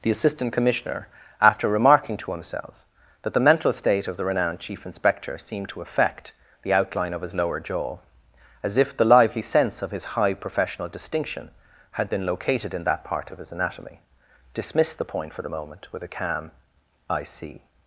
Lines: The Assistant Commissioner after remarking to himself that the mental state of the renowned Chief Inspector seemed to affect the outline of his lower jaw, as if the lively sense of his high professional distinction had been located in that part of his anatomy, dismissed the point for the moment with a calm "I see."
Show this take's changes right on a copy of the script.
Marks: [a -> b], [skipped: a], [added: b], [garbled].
The Assistant Commissioner after remarking to himself that the mental state of the renowned Chief Inspector seemed to affect the outline of his lower jaw, as if the lively sense of his high professional distinction had been located in that part of his anatomy, dismissed the point for the moment with a calm "I see."